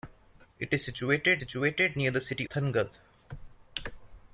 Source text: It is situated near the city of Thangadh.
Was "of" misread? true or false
true